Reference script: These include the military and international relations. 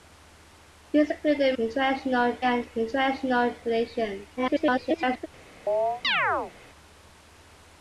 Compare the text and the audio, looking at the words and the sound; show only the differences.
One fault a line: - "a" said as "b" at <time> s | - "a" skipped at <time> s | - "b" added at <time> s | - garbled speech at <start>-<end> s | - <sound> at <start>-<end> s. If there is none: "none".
- "military" said as "international" at 1.6 s
- garbled speech at 4.4-5.3 s
- chirp at 5.7-6.5 s